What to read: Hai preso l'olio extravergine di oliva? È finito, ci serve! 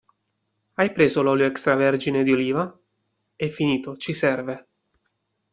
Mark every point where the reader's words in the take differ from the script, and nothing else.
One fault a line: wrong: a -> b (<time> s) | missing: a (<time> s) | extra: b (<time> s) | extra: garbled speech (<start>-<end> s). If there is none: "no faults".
no faults